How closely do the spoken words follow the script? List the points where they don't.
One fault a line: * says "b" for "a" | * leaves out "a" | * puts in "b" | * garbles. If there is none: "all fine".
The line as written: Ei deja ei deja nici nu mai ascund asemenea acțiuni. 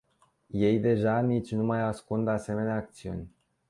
* leaves out "ei deja"